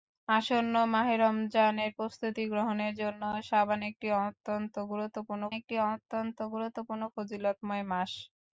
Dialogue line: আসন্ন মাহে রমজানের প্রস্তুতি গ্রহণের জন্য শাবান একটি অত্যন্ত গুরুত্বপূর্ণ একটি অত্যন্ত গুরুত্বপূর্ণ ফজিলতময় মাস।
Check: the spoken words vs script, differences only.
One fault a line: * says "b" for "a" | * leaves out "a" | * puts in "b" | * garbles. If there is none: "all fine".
all fine